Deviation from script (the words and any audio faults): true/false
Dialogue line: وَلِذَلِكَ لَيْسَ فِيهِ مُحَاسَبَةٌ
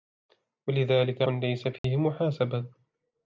true